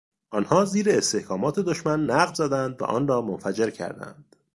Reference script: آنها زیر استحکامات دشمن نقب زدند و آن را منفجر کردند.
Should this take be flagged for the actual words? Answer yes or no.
no